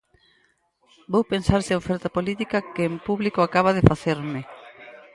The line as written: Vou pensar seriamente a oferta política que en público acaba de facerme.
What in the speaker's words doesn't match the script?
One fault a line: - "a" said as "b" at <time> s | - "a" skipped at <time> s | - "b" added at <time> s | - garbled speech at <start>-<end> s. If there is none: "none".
- "seriamente" skipped at 1.6 s